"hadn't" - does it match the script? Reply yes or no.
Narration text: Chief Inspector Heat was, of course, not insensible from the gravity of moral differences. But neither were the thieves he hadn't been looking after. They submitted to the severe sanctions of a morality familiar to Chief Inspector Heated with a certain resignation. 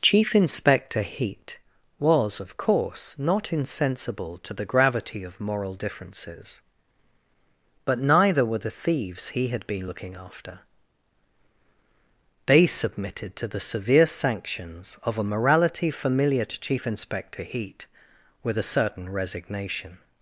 no